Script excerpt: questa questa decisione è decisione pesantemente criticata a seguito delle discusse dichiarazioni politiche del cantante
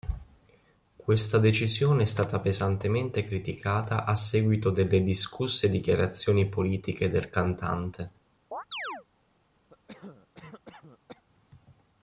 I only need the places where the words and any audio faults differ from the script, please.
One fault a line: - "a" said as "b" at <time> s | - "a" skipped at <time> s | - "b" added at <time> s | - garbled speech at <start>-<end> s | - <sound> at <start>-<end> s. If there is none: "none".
- "questa" skipped at 1.4 s
- "decisione" said as "stata" at 2.1 s
- chirp at 8.5-9.1 s
- cough at 9.7-11.2 s